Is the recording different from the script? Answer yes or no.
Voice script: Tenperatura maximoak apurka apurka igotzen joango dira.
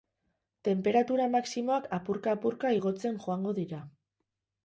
no